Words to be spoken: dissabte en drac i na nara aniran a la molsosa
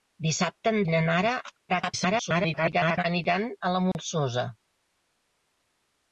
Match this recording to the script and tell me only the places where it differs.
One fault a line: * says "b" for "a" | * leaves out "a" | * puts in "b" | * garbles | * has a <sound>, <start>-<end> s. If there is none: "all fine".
* leaves out "drac"
* garbles
* has a dropout, 3.9-3.9 s